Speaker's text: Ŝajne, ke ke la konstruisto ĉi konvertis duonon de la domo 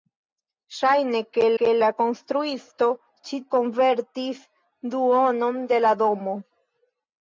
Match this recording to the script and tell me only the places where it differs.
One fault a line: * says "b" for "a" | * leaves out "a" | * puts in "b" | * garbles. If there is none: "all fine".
all fine